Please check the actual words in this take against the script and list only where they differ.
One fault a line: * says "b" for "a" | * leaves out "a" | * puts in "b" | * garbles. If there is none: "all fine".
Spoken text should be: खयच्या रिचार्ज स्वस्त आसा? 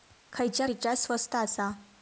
all fine